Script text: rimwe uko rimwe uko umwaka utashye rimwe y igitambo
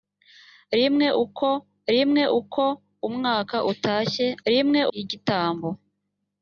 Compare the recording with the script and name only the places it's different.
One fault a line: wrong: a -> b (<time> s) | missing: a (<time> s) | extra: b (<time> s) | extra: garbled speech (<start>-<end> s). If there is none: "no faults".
no faults